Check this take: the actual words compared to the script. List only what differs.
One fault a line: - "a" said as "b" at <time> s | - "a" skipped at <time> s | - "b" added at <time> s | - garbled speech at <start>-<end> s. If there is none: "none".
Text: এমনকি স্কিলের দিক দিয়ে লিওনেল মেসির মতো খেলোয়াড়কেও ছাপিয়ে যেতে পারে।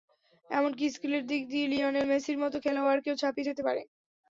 none